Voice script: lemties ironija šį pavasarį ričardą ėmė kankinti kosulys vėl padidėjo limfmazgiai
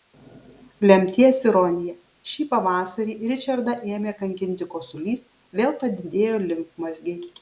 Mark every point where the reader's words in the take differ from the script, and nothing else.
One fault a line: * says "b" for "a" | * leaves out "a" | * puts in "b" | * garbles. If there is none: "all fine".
all fine